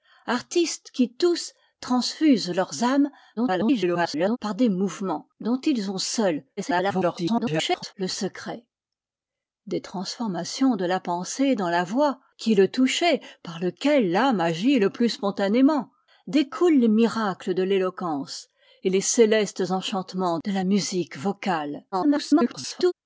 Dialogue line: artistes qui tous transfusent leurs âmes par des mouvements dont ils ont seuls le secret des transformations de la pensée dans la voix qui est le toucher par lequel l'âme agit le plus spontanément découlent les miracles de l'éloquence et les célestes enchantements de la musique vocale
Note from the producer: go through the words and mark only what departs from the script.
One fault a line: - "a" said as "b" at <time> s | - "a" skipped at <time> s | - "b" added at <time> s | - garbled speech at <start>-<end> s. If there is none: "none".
- garbled speech at 3.4-4.4 s
- garbled speech at 6.6-7.9 s
- garbled speech at 21.9-22.9 s